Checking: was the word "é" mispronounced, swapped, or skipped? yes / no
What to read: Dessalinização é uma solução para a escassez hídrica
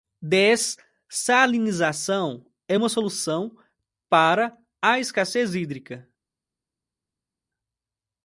no